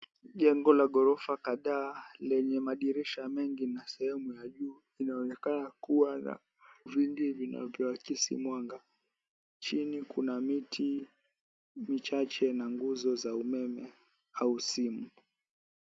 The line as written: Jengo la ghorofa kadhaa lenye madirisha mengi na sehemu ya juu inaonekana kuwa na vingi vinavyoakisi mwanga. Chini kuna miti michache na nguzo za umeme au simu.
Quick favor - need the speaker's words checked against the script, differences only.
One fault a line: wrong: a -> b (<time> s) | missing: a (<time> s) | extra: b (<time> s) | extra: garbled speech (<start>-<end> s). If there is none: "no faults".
no faults